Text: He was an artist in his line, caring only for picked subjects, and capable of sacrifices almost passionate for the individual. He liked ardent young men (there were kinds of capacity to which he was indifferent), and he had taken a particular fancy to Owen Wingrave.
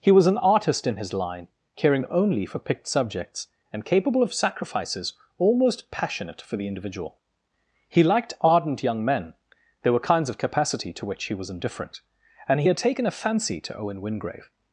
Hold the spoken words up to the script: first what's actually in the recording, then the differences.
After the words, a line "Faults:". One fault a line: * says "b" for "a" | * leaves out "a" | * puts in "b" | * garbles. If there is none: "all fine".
He was an artist in his line, caring only for picked subjects, and capable of sacrifices almost passionate for the individual. He liked ardent young men (there were kinds of capacity to which he was indifferent), and he had taken a fancy to Owen Wingrave.
Faults:
* leaves out "particular"